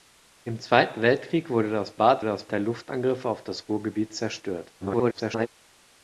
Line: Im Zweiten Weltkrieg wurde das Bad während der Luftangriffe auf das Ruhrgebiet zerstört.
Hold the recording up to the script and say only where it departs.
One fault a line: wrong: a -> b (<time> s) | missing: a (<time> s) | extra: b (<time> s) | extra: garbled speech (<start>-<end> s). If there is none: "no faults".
wrong: während -> das (2.2 s)
extra: garbled speech (4.8-5.5 s)